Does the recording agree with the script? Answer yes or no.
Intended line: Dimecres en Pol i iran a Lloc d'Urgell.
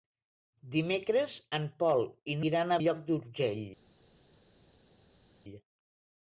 yes